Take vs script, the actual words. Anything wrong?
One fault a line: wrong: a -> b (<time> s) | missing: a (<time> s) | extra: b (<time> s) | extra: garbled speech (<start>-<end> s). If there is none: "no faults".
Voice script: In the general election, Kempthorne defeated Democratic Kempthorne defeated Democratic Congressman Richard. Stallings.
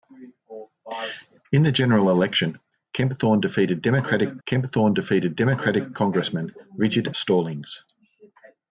no faults